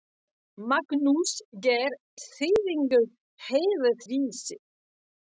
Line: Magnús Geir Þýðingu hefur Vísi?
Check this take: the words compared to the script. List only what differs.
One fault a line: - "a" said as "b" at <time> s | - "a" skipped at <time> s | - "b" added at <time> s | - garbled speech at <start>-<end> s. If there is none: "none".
none